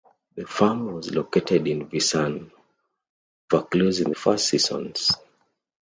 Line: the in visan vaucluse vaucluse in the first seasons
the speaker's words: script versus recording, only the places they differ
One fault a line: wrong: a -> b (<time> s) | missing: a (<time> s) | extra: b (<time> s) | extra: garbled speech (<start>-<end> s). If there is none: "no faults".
extra: farm was located (0.5 s)
missing: vaucluse (4.0 s)